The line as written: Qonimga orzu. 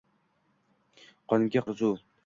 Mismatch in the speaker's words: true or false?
false